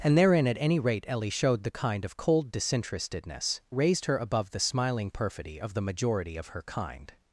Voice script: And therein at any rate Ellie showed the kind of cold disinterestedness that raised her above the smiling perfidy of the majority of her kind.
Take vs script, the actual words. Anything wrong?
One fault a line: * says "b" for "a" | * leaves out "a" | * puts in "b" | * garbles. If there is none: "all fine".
* leaves out "that"